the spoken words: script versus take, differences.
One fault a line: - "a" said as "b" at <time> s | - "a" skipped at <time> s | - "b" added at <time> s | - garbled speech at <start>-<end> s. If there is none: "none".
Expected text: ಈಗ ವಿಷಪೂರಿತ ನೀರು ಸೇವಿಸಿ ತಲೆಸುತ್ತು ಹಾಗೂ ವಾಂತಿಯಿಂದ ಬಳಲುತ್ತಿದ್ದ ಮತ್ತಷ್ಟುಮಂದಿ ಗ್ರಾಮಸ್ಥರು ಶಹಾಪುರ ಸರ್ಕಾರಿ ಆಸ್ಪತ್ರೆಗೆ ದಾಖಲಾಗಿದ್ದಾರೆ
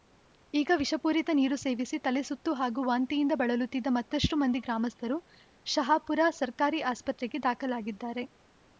none